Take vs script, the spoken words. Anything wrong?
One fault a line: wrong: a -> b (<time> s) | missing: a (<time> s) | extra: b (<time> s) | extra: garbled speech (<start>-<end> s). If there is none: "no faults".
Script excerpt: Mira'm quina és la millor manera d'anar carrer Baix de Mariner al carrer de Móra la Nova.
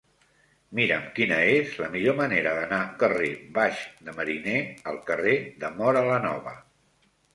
no faults